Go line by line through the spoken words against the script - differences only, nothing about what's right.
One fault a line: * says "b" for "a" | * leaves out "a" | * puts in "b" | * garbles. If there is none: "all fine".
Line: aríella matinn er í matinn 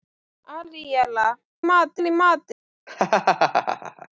all fine